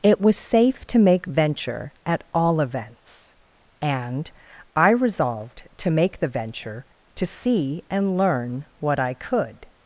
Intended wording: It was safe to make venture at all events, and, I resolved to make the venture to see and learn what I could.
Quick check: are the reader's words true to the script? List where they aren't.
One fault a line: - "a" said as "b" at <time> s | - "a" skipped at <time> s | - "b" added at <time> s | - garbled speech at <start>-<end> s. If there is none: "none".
none